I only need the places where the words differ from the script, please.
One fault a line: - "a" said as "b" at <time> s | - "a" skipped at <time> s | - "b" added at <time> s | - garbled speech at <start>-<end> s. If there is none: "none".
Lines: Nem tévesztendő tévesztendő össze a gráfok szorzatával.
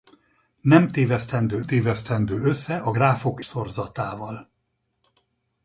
none